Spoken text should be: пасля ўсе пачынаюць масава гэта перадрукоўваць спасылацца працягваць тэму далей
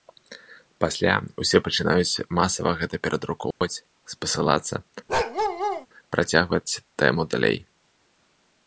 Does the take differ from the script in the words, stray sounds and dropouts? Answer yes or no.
yes